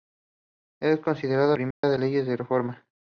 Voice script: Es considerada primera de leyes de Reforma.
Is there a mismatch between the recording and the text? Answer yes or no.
no